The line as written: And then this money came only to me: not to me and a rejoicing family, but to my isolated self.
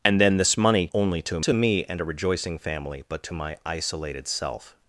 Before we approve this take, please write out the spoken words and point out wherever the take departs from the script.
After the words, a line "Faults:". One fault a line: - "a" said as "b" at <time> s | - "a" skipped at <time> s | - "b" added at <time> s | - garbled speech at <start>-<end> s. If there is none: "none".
And then this money only to to me and a rejoicing family, but to my isolated self.
Faults:
- "came" skipped at 0.9 s
- "me not" skipped at 1.4 s